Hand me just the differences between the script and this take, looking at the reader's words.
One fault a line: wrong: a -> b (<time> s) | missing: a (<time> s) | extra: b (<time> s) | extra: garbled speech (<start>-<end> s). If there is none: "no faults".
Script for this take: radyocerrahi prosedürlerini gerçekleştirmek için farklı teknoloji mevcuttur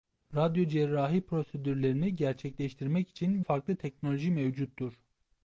no faults